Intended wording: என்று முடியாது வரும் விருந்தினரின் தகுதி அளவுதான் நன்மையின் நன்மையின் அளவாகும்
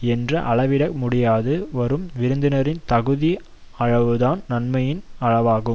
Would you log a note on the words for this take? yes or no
yes